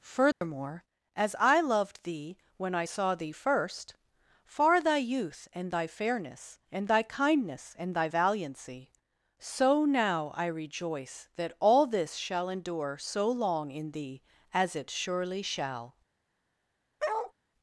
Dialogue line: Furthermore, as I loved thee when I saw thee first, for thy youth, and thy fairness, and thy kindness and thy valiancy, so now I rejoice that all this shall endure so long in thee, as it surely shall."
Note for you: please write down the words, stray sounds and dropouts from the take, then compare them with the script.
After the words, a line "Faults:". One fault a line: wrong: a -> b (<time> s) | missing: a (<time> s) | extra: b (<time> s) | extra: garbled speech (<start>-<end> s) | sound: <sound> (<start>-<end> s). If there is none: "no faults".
Furthermore, as I loved thee when I saw thee first, far thy youth, and thy fairness, and thy kindness and thy valiancy, so now I rejoice that all this shall endure so long in thee, as it surely shall."
Faults:
sound: dropout (0.3-0.4 s)
wrong: for -> far (4.4 s)
sound: bark (17.0-17.3 s)